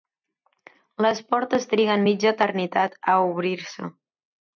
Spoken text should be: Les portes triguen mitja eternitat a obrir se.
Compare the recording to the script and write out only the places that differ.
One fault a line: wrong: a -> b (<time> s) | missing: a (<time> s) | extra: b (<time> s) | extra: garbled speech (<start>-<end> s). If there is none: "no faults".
no faults